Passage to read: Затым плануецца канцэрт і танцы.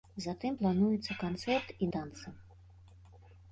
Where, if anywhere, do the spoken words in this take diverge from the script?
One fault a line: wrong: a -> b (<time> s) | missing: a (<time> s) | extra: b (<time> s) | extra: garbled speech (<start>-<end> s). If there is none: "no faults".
no faults